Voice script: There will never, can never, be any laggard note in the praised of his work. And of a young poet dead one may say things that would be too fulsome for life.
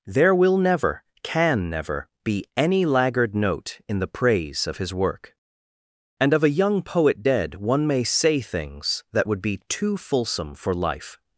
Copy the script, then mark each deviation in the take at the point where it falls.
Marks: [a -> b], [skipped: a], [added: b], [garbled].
There will never, can never, be any laggard note in the [praised -> praise] of his work. And of a young poet dead one may say things that would be too fulsome for life.